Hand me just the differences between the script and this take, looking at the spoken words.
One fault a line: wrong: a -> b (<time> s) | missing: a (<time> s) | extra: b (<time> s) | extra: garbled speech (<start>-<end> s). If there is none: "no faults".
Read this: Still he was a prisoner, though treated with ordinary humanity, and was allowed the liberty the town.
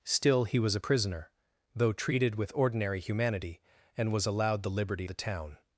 no faults